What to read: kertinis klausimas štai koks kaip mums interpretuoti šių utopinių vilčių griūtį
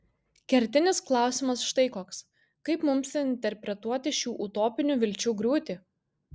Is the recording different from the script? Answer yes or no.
no